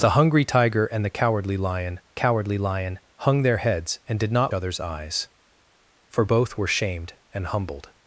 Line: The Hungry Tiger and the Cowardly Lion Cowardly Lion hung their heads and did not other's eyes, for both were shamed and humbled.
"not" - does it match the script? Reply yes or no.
yes